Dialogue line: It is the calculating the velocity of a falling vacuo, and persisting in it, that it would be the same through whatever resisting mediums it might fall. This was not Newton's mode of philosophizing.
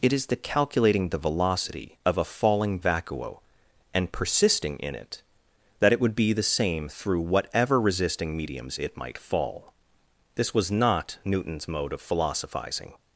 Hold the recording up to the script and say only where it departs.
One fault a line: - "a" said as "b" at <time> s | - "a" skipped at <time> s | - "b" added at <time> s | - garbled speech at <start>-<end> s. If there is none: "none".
none